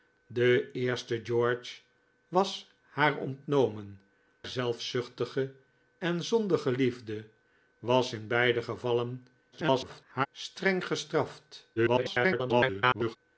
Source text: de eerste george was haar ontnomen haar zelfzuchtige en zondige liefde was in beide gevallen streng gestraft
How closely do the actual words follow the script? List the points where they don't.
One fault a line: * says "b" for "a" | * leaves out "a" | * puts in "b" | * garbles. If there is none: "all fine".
* leaves out "haar"
* garbles
* garbles